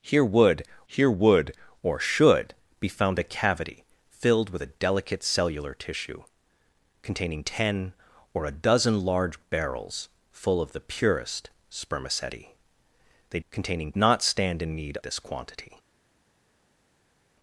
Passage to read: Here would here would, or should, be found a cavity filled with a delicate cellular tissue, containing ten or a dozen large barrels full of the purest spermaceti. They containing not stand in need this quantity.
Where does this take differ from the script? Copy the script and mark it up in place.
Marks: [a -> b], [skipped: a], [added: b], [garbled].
Here would here would, or should, be found a cavity filled with a delicate cellular tissue, containing ten or a dozen large barrels full of the purest spermaceti. They containing not stand in need this quantity.